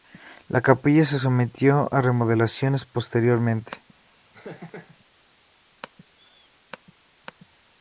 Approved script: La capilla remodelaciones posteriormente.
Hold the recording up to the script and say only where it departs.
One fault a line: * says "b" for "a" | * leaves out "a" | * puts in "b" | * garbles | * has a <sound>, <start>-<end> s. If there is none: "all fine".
* puts in "se sometió a"
* has a laugh, 4.3-5.0 s